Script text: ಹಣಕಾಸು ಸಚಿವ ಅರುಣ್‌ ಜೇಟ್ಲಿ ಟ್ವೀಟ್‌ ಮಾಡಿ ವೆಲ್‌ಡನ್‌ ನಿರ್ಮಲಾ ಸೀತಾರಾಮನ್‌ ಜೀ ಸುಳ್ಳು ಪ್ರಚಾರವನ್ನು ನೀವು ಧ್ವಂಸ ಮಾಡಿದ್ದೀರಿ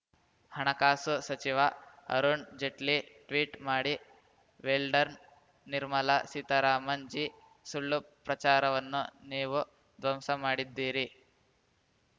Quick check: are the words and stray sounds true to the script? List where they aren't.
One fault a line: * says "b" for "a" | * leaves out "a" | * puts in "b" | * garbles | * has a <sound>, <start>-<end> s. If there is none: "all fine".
all fine